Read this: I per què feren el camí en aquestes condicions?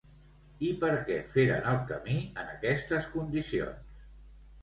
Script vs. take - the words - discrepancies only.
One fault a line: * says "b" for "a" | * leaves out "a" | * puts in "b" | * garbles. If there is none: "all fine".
all fine